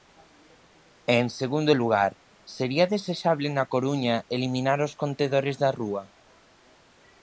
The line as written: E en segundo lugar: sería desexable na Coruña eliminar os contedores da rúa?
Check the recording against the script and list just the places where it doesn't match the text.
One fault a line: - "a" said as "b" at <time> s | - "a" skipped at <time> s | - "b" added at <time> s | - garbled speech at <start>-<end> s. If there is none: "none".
none